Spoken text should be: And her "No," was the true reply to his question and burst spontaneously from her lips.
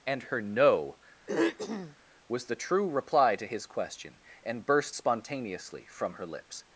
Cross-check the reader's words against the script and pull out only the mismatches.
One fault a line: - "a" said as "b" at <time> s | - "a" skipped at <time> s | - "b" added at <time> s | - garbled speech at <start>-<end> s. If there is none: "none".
none